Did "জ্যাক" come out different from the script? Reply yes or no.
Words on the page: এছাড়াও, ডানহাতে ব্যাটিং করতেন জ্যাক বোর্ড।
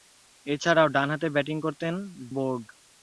yes